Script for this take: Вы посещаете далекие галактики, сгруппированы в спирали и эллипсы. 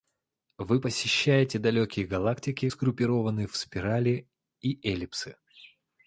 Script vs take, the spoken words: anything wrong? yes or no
no